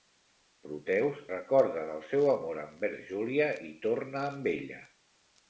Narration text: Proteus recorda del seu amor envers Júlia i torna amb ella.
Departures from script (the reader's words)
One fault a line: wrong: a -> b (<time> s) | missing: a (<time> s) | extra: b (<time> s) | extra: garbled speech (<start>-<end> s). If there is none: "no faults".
no faults